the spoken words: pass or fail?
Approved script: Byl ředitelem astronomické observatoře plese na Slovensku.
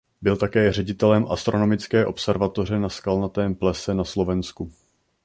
fail